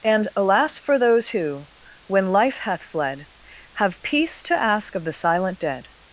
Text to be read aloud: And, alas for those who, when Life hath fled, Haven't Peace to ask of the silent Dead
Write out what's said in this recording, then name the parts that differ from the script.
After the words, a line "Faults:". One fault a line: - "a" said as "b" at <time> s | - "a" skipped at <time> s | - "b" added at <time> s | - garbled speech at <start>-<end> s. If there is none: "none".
And, alas for those who, when Life hath fled, Have Peace to ask of the silent Dead
Faults:
- "Haven't" said as "Have" at 3.7 s